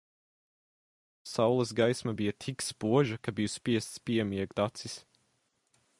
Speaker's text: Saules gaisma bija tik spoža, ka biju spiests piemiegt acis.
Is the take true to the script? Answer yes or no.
yes